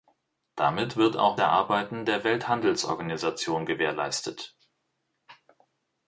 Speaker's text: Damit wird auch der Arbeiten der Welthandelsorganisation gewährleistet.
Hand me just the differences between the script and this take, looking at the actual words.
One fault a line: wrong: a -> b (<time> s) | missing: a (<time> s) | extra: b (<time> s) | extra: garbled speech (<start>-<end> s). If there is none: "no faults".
no faults